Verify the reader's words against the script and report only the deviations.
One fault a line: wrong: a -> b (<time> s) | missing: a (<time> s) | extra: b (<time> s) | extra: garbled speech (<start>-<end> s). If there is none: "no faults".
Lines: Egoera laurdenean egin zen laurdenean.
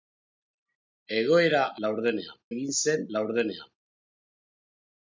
no faults